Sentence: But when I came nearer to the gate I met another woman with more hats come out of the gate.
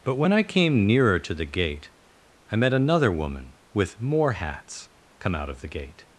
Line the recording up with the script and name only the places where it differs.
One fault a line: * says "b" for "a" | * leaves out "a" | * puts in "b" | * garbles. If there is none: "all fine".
all fine